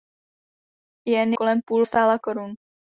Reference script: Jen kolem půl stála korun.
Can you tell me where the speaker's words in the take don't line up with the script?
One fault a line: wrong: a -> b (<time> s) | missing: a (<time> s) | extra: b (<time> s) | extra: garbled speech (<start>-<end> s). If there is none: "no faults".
no faults